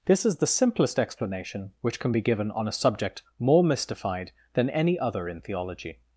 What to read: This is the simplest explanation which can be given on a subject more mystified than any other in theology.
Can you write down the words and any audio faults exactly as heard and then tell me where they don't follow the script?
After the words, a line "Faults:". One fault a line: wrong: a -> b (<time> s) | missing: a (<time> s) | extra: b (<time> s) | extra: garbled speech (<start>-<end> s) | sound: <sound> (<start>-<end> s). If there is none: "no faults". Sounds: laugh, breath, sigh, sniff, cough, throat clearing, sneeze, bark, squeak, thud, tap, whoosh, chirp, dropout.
This is the simplest explanation which can be given on a subject more mystified than any other in theology.
Faults:
no faults